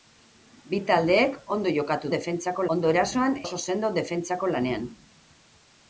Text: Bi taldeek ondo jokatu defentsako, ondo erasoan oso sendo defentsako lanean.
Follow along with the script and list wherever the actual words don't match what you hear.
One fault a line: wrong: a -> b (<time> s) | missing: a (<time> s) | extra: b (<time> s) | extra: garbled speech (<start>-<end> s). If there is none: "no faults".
no faults